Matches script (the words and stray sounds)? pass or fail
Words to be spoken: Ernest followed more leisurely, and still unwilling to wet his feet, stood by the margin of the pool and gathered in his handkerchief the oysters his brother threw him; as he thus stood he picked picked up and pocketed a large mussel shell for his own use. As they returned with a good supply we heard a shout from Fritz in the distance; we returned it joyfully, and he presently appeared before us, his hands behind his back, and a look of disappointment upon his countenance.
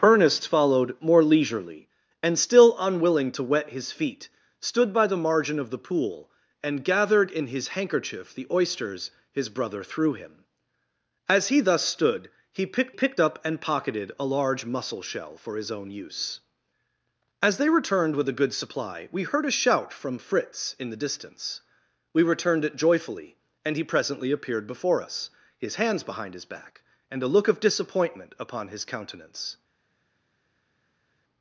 pass